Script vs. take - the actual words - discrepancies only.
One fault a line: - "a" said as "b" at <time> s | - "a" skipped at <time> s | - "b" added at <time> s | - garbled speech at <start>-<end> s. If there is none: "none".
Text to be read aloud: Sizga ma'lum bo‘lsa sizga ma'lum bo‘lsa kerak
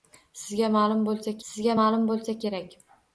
none